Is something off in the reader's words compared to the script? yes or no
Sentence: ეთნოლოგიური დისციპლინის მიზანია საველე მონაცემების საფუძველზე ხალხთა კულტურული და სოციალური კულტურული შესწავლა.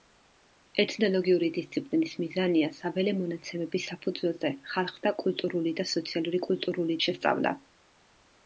no